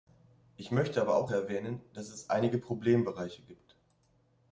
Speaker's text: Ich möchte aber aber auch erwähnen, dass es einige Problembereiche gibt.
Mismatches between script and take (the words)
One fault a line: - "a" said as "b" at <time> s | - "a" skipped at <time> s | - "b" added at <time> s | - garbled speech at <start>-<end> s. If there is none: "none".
- "aber" skipped at 1.1 s